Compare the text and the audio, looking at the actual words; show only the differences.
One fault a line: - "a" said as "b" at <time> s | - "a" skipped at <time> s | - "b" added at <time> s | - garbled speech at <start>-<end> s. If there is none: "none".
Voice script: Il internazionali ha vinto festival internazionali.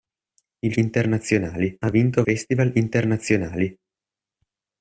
none